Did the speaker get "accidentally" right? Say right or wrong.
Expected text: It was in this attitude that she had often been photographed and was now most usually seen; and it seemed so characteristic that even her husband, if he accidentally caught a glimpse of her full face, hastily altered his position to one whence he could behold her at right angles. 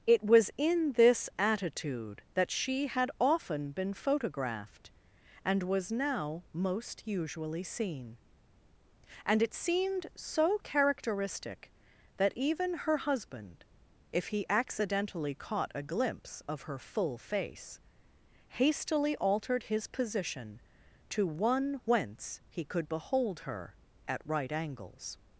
right